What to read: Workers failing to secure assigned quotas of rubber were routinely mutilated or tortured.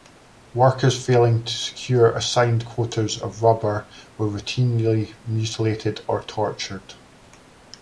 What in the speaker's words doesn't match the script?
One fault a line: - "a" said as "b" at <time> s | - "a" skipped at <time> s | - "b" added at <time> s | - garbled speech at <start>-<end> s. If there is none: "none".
none